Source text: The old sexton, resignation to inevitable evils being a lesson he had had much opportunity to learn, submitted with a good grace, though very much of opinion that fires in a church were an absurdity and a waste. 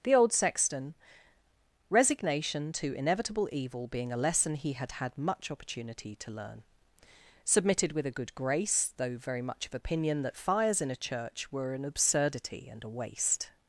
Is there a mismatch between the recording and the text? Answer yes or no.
yes